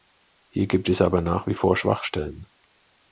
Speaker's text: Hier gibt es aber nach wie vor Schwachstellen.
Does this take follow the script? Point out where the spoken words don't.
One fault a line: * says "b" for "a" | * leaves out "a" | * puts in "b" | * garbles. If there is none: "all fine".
all fine